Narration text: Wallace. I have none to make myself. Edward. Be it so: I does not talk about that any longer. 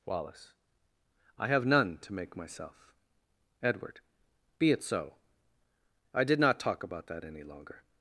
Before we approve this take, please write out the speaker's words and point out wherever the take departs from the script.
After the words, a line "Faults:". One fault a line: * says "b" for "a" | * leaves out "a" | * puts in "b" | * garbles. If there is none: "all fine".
Wallace. I have none to make myself. Edward. Be it so: I did not talk about that any longer.
Faults:
* says "did" for "does"